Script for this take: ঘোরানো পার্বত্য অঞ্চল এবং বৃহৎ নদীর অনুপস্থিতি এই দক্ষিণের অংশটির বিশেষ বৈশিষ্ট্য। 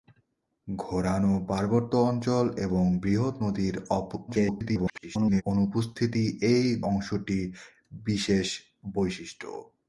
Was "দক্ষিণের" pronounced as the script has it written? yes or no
no